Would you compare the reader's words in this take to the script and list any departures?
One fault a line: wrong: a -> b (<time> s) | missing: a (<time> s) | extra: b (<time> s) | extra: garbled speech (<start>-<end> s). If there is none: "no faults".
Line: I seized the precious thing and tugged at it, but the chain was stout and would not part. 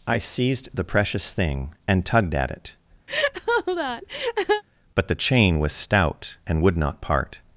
no faults